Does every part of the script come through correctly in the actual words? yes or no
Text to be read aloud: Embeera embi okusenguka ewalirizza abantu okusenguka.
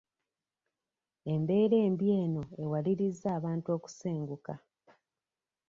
no